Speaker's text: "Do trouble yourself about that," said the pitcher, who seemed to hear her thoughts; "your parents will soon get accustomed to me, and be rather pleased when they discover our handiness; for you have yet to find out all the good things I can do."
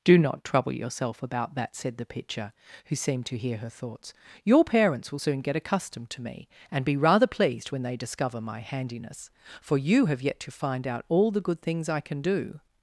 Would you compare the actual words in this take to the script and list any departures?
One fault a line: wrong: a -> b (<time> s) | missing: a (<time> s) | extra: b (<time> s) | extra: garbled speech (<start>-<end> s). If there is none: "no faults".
extra: not (0.2 s)
wrong: our -> my (8.4 s)